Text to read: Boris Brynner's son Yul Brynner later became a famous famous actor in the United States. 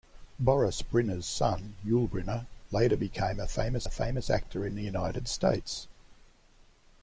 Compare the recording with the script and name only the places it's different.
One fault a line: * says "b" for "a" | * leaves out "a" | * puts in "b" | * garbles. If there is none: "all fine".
all fine